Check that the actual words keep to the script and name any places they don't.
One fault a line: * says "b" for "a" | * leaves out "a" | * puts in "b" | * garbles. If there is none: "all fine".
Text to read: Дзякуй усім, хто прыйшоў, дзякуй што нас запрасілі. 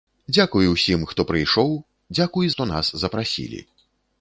all fine